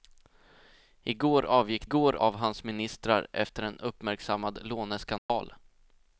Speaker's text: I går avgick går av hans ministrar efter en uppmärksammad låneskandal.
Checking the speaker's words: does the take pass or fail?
pass